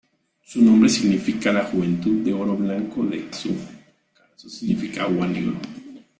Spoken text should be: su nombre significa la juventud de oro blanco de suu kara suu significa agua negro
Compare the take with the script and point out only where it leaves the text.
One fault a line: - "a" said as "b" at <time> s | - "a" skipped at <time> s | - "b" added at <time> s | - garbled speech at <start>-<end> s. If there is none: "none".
none